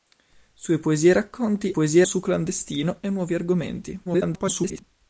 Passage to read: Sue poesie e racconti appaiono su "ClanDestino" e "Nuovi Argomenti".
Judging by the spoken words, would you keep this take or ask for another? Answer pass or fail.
fail